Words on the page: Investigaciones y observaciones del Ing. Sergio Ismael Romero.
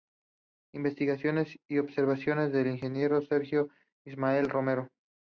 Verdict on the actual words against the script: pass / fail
pass